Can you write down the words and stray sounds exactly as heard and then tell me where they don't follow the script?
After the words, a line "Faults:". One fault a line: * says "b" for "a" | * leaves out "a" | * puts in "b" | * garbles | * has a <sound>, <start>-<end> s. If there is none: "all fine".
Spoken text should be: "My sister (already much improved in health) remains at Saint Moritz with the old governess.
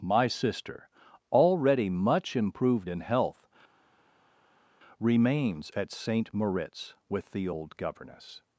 "My sister (already much improved in health) remains at Saint Moritz with the old governess.
Faults:
all fine